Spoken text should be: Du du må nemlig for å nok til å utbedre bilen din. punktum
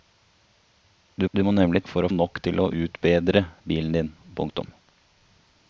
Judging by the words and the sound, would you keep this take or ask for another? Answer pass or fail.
pass